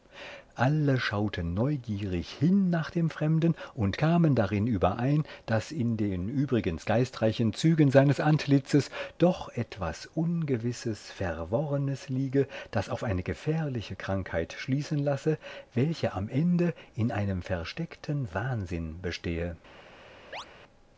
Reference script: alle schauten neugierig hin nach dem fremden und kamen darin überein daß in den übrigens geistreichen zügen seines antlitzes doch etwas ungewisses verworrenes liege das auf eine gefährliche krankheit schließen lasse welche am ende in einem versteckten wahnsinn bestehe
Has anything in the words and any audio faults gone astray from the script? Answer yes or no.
yes